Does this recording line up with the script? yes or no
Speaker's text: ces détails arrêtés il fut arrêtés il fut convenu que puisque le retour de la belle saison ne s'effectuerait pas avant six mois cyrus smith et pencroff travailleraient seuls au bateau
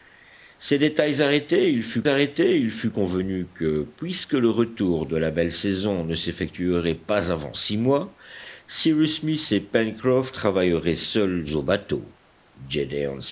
yes